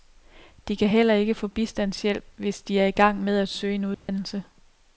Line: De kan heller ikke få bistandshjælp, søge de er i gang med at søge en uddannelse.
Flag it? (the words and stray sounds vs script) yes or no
yes